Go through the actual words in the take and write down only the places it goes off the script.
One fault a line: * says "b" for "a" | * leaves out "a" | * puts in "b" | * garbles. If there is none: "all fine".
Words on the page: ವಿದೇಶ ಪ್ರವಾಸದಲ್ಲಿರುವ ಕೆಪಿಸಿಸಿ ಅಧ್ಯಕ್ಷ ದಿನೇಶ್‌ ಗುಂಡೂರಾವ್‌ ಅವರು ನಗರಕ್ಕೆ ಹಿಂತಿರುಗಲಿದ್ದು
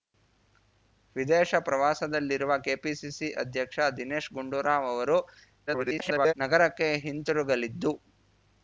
* garbles